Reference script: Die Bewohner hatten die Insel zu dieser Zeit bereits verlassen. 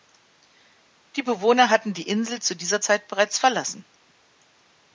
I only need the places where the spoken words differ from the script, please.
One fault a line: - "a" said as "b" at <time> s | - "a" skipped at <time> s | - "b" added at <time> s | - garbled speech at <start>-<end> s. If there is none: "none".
none